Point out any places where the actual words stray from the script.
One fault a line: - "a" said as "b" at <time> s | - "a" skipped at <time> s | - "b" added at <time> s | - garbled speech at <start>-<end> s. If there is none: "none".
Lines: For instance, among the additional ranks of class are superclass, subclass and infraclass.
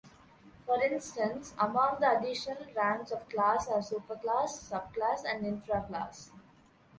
none